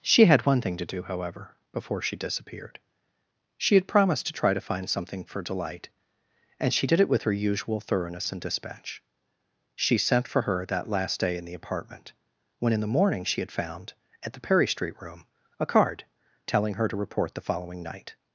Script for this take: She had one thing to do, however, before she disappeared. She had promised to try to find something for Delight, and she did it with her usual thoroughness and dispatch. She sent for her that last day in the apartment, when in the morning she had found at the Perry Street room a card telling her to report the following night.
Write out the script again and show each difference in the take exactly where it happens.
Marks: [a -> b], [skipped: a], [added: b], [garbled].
She had one thing to do, however, before she disappeared. She had promised to try to find something for Delight, and she did it with her usual thoroughness and dispatch. She sent for her that last day in the apartment, when in the morning she had found at the Perry Street room a card telling her to report the following night.